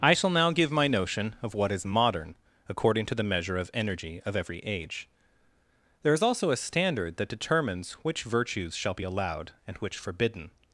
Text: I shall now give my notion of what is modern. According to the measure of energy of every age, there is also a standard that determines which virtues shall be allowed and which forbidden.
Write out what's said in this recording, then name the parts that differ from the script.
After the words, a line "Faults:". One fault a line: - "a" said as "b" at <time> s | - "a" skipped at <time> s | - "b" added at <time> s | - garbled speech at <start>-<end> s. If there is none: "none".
I shall now give my notion of what is modern. According to the measure of energy of every age, there is also a standard that determines which virtues shall be allowed and which forbidden.
Faults:
none